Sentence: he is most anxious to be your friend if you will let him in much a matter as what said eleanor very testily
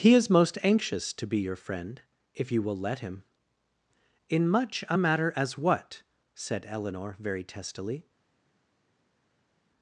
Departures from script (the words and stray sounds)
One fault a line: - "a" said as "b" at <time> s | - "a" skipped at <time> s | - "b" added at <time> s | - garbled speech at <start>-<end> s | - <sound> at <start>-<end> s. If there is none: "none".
none